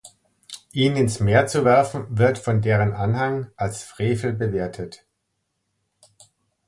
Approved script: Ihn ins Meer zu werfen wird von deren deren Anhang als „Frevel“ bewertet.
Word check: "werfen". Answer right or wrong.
right